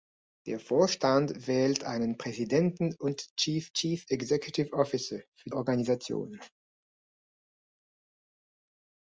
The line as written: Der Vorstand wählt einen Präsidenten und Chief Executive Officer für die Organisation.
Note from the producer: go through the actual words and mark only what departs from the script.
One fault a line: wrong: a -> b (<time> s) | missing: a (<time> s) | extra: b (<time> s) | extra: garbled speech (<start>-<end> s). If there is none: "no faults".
extra: Chief (3.7 s)
missing: die (5.5 s)